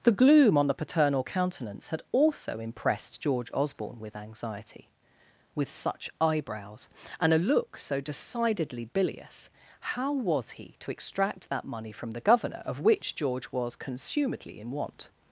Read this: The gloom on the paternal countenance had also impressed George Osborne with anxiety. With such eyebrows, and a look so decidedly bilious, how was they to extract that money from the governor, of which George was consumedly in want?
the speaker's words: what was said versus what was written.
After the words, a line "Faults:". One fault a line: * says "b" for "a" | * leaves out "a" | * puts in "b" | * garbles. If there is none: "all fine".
The gloom on the paternal countenance had also impressed George Osborne with anxiety. With such eyebrows, and a look so decidedly bilious, how was he to extract that money from the governor, of which George was consumedly in want?
Faults:
* says "he" for "they"